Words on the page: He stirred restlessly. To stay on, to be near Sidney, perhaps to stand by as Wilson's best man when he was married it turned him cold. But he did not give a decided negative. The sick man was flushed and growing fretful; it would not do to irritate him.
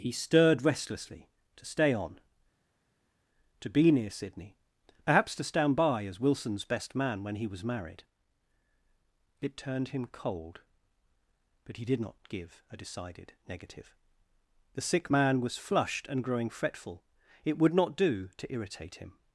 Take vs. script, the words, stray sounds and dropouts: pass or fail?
pass